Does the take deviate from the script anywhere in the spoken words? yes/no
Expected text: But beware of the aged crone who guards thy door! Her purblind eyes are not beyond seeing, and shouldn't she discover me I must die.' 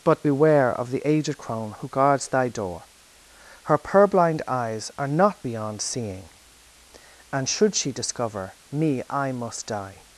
yes